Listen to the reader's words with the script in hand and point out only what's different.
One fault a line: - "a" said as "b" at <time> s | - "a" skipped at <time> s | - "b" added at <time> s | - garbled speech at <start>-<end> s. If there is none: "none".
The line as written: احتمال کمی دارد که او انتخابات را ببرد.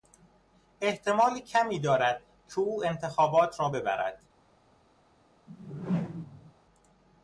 none